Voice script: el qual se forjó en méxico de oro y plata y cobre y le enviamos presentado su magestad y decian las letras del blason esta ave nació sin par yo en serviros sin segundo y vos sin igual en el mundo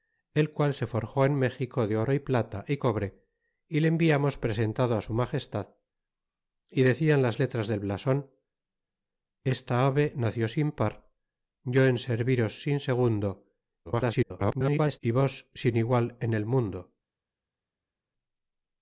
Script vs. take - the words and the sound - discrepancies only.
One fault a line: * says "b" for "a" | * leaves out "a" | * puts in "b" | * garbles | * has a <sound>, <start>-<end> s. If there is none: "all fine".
* garbles